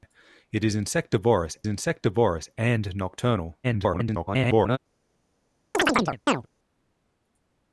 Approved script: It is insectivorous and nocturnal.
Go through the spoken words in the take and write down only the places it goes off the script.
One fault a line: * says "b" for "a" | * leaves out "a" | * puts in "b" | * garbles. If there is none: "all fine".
* puts in "insectivorous"
* garbles